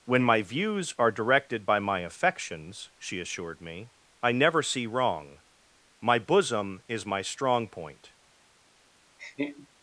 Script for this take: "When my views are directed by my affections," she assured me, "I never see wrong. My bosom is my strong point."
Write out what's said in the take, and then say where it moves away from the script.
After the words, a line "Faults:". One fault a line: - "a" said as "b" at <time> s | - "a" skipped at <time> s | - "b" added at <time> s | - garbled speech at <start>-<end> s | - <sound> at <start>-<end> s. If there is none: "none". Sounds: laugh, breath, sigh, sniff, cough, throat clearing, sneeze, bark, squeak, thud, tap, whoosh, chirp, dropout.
"When my views are directed by my affections," she assured me, "I never see wrong. My bosom is my strong point."
Faults:
- laugh at 9.2-9.7 s